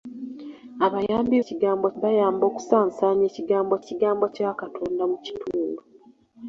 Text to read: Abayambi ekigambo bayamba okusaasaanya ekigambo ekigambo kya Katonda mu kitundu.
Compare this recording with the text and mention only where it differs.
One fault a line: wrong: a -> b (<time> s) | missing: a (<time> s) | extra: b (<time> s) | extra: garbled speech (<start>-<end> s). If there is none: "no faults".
no faults